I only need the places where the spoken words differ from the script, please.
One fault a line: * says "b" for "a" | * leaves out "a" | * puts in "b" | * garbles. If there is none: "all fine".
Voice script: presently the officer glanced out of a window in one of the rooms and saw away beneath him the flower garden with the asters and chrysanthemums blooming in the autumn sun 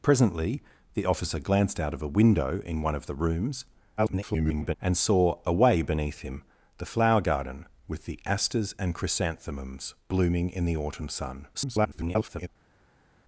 * garbles
* garbles